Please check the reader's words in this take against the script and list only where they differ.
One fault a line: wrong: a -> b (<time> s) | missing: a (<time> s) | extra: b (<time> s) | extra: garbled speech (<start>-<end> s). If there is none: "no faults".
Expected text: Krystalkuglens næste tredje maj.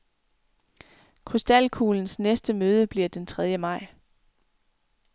extra: møde bliver den (2.5 s)